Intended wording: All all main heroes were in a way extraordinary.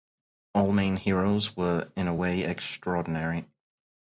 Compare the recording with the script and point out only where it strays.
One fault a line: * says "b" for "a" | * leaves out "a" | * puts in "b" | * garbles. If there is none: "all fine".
* leaves out "all"